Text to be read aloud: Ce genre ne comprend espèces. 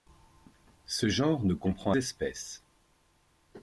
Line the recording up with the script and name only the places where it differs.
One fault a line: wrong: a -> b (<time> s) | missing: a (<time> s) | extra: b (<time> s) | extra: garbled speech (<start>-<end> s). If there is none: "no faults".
no faults